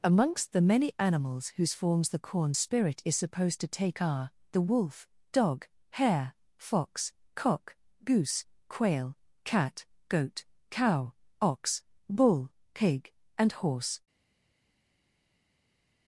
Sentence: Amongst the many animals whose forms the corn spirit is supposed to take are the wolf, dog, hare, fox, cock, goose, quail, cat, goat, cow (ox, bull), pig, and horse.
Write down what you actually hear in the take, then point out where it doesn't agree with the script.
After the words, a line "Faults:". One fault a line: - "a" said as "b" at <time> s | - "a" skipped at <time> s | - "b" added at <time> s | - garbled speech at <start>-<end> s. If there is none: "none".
Amongst the many animals whose forms the corn spirit is supposed to take are the wolf, dog, hare, fox, cock, goose, quail, cat, goat, cow (ox, bull), pig, and horse.
Faults:
none